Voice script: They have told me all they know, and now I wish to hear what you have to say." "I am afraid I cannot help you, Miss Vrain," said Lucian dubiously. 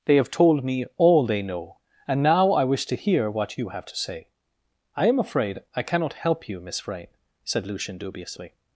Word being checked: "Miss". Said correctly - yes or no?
yes